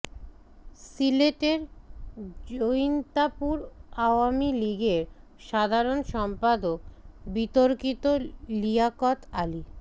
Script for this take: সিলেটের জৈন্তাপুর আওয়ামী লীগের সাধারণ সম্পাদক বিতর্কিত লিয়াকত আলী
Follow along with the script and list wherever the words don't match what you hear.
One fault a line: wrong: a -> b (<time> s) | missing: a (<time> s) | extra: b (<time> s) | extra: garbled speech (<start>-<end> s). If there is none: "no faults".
no faults